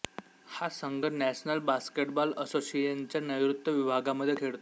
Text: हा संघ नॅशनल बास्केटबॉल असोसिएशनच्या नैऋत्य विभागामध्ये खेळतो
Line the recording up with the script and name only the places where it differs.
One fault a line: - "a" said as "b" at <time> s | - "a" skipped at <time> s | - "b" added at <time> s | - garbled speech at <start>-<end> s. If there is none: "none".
none